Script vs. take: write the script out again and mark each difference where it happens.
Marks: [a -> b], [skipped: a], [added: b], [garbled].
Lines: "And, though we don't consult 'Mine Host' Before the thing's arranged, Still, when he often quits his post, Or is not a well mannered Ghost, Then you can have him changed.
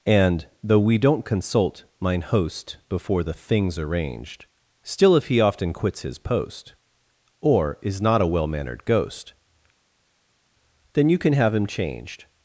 "And, though we don't consult 'Mine Host' Before the thing's arranged, Still, [when -> if] he often quits his post, Or is not a well mannered Ghost, Then you can have him changed.